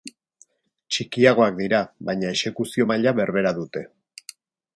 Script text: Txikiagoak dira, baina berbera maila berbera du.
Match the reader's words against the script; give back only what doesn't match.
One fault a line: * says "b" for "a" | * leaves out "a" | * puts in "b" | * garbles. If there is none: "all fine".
* says "exekuzio" for "berbera"
* says "dute" for "du"